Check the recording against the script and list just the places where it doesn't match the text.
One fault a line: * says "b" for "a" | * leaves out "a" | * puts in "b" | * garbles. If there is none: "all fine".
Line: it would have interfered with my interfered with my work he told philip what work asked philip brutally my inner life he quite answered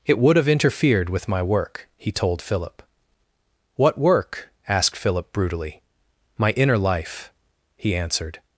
* leaves out "interfered with my"
* leaves out "quite"